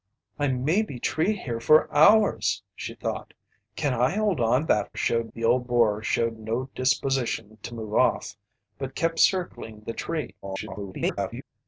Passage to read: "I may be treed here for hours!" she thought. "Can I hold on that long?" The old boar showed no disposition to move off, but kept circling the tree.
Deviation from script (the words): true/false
true